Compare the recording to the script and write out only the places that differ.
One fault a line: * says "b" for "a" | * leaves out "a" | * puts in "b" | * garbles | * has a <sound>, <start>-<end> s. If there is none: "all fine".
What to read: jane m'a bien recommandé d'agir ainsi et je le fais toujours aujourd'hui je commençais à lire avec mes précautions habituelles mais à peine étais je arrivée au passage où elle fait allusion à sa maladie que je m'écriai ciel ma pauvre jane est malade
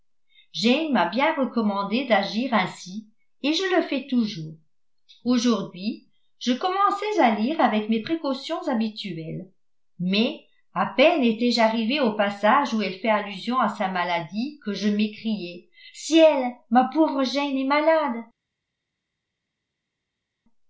all fine